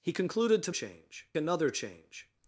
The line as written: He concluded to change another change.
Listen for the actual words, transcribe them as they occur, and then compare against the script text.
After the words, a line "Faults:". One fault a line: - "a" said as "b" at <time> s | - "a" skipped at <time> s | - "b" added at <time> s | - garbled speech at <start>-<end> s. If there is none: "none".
He concluded to change another change.
Faults:
none